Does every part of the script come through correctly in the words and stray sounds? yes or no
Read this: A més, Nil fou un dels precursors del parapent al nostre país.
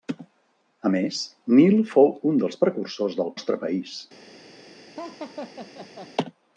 no